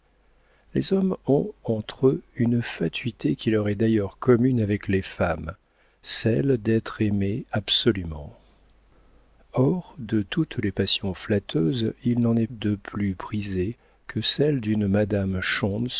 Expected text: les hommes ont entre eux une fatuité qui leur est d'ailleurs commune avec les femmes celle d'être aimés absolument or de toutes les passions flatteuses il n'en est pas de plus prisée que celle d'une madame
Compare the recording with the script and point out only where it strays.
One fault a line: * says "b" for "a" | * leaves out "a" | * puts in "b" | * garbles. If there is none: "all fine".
* leaves out "pas"